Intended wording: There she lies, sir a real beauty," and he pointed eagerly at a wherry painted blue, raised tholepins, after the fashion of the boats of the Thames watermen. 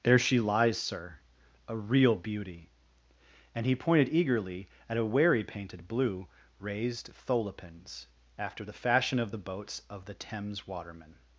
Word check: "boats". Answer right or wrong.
right